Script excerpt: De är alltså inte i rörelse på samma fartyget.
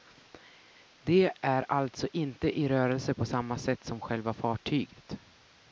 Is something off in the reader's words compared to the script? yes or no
yes